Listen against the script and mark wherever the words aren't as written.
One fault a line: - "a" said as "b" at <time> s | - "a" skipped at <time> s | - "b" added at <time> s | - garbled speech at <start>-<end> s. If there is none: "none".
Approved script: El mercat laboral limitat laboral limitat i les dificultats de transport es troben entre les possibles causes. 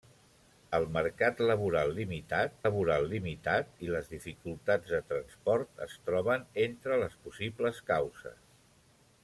none